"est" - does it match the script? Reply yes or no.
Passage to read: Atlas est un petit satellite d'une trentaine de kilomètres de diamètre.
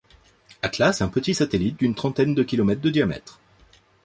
no